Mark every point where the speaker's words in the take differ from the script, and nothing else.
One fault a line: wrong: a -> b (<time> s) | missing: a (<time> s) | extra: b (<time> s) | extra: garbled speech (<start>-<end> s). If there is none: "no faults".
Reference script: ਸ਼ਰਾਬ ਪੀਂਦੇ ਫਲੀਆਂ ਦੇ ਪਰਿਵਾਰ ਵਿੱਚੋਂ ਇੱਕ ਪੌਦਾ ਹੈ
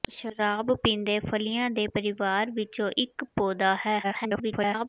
extra: garbled speech (4.0-4.9 s)